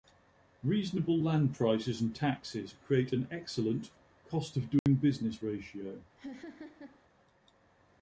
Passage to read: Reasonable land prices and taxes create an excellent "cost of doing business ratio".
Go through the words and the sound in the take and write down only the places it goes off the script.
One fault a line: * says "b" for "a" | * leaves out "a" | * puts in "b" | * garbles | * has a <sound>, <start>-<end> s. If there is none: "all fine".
* has a dropout, 4.8-4.9 s
* has a laugh, 6.2-7.0 s